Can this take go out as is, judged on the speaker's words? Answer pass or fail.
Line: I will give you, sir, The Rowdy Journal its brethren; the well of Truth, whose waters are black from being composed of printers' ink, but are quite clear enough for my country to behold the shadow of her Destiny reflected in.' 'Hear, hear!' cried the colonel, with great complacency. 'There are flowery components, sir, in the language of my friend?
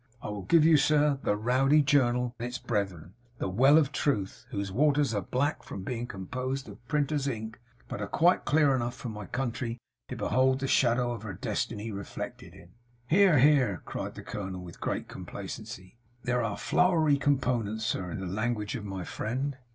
pass